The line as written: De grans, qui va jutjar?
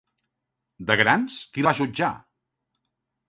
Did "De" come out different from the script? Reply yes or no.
no